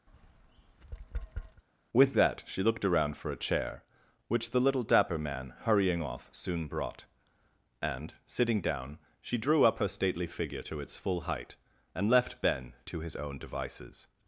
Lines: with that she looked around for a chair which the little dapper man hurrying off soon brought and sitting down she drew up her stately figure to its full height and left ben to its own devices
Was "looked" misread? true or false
false